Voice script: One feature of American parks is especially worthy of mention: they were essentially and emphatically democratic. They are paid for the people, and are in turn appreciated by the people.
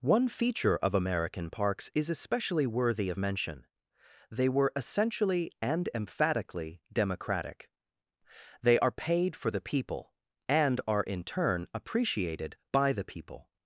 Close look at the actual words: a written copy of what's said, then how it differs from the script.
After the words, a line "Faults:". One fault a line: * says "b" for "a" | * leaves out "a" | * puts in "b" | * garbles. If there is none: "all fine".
One feature of American parks is especially worthy of mention: they were essentially and emphatically democratic. They are paid for the people, and are in turn appreciated by the people.
Faults:
all fine